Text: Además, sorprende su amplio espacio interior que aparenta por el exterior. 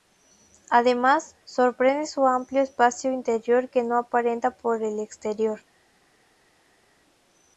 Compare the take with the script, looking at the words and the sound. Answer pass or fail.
fail